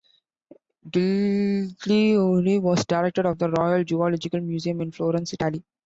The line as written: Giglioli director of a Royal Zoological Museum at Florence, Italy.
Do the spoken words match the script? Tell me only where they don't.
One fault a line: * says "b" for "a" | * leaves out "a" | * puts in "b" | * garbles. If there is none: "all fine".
* puts in "was"
* says "the" for "a"
* says "in" for "at"